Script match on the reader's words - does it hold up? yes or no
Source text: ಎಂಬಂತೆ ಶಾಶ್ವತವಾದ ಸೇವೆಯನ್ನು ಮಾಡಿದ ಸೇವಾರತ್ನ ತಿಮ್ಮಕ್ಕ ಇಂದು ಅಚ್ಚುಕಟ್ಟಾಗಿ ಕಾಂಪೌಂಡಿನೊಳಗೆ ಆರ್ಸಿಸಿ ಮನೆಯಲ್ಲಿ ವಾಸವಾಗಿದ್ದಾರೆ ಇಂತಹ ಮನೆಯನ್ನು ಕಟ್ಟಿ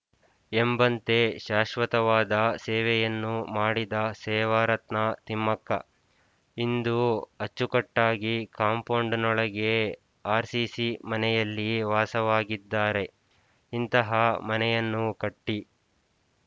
yes